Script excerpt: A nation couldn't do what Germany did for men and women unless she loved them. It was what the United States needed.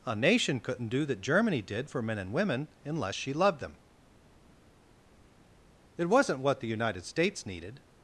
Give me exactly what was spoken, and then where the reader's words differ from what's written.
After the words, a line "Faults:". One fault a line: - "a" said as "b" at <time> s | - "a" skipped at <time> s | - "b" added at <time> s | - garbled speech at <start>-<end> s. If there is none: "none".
A nation couldn't do that Germany did for men and women unless she loved them. It wasn't what the United States needed.
Faults:
- "what" said as "that" at 1.1 s
- "was" said as "wasn't" at 6.1 s